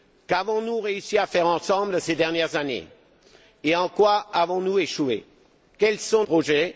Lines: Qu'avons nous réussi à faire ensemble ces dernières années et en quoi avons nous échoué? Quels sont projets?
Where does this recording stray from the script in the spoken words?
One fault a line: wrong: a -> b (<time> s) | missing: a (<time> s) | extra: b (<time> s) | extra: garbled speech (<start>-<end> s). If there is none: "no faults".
no faults